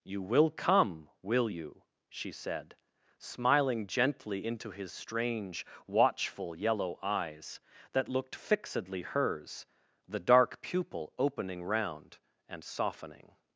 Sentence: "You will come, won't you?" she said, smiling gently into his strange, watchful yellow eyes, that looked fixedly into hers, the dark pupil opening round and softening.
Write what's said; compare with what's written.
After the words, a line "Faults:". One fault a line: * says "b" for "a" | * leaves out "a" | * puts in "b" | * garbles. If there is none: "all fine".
"You will come, will you?" she said, smiling gently into his strange, watchful yellow eyes, that looked fixedly hers, the dark pupil opening round and softening.
Faults:
* says "will" for "won't"
* leaves out "into"